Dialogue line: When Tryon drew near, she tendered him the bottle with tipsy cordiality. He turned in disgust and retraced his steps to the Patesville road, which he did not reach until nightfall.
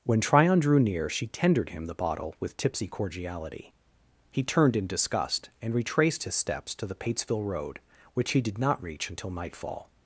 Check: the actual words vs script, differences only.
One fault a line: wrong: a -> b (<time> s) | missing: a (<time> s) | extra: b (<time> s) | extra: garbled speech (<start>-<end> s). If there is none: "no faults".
no faults